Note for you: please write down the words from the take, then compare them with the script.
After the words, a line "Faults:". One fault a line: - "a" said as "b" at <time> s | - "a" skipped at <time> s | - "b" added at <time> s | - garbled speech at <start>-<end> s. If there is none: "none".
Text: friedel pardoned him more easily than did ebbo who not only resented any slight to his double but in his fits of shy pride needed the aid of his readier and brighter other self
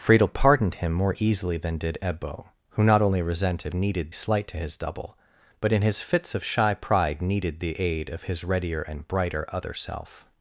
friedel pardoned him more easily than did ebbo who not only resented needed slight to his double but in his fits of shy pride needed the aid of his readier and brighter other self
Faults:
- "any" said as "needed" at 3.7 s